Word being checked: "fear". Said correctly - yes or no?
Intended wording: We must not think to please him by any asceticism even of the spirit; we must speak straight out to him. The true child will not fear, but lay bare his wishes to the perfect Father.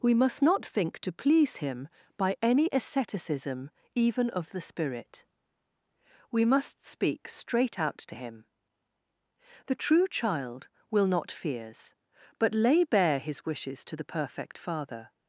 no